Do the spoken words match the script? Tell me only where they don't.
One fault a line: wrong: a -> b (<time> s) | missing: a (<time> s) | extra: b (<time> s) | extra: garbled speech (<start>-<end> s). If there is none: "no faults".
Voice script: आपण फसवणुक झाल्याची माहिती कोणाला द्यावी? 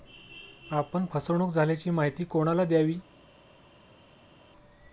no faults